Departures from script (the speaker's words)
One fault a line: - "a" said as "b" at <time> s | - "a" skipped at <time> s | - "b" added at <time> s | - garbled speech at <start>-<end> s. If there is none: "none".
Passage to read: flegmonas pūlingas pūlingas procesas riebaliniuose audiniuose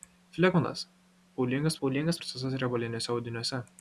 none